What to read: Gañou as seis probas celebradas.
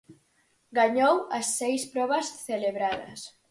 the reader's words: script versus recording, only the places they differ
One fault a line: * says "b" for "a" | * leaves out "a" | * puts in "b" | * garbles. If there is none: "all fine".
all fine